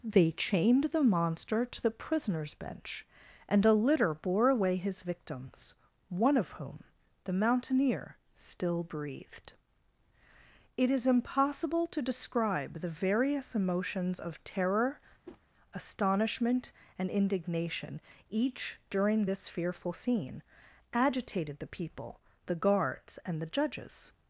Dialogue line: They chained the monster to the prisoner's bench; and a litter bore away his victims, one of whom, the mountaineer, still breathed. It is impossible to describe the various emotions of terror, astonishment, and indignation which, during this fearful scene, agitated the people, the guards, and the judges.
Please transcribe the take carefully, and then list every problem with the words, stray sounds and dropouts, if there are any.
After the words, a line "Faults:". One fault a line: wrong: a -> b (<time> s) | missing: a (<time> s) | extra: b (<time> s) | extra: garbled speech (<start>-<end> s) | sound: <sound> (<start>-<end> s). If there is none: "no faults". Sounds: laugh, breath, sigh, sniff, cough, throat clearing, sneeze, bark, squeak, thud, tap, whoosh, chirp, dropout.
They chained the monster to the prisoner's bench; and a litter bore away his victims, one of whom, the mountaineer, still breathed. It is impossible to describe the various emotions of terror, astonishment, and indignation each, during this fearful scene, agitated the people, the guards, and the judges.
Faults:
sound: whoosh (15.2-15.4 s)
wrong: which -> each (18.3 s)